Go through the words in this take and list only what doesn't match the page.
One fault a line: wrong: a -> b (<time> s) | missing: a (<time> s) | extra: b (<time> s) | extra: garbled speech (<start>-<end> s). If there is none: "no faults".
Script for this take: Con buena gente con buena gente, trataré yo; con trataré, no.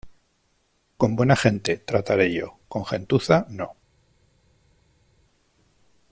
missing: con buena gente (1.8 s)
wrong: trataré -> gentuza (2.9 s)